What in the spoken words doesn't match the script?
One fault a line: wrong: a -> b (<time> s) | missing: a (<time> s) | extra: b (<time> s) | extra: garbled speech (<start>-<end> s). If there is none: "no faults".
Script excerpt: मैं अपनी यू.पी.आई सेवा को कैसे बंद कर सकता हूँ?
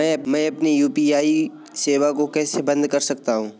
no faults